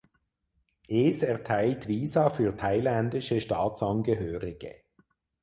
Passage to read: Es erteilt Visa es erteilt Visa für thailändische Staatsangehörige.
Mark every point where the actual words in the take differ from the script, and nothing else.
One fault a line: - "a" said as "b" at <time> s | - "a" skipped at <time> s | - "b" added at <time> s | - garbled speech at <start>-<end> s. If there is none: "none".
- "es erteilt Visa" skipped at 2.3 s